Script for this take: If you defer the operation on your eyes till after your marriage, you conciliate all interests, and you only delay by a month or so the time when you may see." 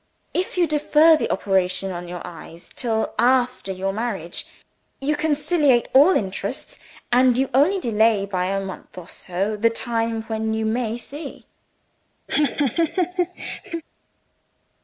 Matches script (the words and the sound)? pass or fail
fail